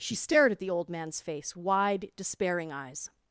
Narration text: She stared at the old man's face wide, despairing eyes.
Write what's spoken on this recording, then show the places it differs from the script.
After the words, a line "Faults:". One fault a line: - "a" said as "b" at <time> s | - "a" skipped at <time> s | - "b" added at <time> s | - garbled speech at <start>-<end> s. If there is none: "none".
She stared at the old man's face wide, despairing eyes.
Faults:
none